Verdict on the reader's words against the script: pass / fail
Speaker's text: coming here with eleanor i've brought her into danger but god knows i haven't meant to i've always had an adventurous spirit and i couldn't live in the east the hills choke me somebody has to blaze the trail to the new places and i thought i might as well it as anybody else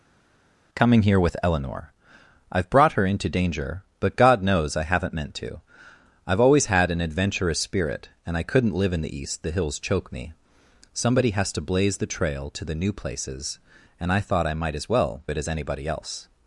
pass